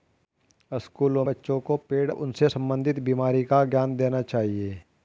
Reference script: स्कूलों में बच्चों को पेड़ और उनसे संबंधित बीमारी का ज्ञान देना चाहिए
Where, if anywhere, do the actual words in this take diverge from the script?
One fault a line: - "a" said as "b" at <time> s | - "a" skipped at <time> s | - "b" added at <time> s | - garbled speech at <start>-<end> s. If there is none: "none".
- "में" skipped at 1.2 s
- "और" skipped at 2.1 s